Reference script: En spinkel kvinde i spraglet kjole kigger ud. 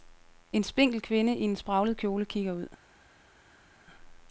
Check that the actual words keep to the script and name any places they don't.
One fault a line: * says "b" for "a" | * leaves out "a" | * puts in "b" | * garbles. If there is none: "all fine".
* puts in "en"